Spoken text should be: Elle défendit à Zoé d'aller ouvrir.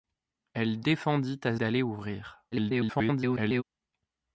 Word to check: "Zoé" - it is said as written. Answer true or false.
false